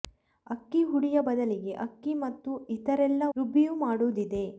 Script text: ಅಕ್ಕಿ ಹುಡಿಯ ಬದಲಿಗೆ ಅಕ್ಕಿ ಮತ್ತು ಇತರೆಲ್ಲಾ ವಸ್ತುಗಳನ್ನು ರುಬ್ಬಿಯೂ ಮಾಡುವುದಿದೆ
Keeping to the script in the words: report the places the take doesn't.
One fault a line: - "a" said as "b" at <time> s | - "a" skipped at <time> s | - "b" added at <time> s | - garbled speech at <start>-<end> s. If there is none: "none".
- "ವಸ್ತುಗಳನ್ನು" skipped at 3.3 s